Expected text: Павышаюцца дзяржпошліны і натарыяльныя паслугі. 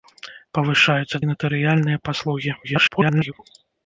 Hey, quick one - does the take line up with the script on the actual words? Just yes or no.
no